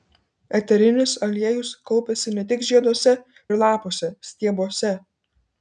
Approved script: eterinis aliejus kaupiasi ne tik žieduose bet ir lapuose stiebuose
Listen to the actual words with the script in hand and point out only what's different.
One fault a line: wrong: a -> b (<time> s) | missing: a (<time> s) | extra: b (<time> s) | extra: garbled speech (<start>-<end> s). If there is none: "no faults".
missing: bet (3.1 s)